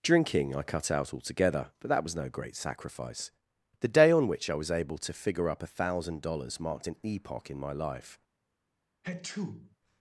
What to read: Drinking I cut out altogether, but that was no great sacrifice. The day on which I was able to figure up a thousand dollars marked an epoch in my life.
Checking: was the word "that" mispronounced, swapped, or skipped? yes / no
no